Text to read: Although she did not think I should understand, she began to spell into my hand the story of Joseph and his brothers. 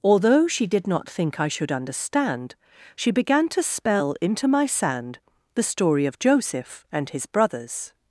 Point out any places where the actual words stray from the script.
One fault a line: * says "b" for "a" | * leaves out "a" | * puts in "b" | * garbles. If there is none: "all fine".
* says "sand" for "hand"